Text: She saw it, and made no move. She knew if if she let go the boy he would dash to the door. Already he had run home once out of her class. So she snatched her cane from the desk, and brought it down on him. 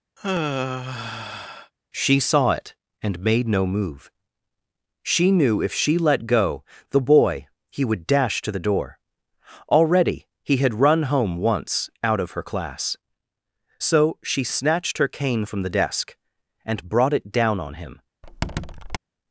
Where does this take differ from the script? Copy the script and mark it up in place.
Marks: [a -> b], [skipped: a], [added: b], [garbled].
She saw it, and made no move. She knew if [skipped: if] she let go the boy he would dash to the door. Already he had run home once out of her class. So she snatched her cane from the desk, and brought it down on him.